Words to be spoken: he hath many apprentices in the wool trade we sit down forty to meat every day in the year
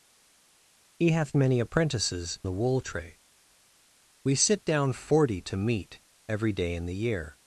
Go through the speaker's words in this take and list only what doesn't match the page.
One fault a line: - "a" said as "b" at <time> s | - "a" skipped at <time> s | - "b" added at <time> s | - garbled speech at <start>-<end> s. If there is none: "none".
- "in" skipped at 2.4 s